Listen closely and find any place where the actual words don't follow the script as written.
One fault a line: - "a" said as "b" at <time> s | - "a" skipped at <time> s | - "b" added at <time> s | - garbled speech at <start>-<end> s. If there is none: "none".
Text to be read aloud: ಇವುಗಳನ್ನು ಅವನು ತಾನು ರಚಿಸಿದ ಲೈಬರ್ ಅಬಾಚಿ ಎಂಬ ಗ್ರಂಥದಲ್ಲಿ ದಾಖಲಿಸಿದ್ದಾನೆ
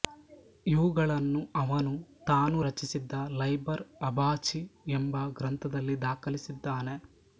none